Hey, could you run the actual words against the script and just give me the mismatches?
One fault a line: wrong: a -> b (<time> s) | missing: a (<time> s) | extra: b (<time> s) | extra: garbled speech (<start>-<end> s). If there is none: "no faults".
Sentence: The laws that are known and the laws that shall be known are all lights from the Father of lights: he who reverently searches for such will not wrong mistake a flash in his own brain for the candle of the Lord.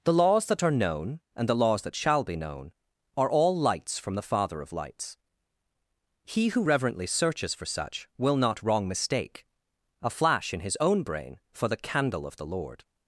no faults